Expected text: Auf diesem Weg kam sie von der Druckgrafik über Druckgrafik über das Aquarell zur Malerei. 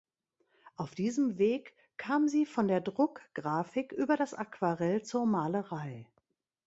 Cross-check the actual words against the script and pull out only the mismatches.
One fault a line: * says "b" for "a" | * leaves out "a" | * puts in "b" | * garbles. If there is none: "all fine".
* leaves out "Druckgrafik über"